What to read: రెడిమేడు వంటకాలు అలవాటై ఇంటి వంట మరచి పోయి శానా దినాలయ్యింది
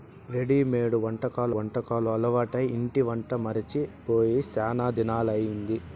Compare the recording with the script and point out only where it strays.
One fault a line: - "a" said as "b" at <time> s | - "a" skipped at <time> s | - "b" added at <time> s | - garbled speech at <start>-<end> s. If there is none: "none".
- "వంటకాలు" added at 1.5 s